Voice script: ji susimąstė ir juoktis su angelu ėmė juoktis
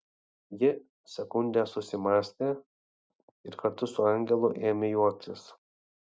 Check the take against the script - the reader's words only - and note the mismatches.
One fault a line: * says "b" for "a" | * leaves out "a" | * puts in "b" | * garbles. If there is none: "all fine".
* puts in "sekundę"
* says "kartu" for "juoktis"